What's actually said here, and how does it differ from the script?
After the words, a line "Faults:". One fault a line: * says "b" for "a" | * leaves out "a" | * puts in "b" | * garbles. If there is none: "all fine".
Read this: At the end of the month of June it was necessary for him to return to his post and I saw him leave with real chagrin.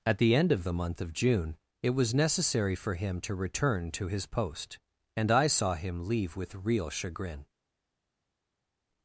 At the end of the month of June it was necessary for him to return to his post and I saw him leave with real chagrin.
Faults:
all fine